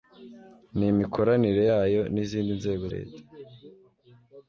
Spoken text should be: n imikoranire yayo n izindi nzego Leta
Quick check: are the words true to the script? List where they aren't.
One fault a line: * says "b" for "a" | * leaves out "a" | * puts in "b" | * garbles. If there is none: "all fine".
all fine